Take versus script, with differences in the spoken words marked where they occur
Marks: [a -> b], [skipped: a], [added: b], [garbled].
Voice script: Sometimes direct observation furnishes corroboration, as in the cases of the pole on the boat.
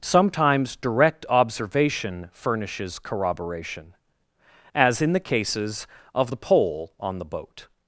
Sometimes direct observation furnishes corroboration, as in the cases of the pole on the boat.